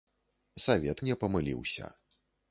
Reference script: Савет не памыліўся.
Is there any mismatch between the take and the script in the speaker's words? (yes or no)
no